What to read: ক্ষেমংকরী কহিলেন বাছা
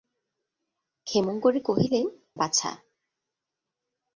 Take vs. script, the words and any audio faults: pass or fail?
pass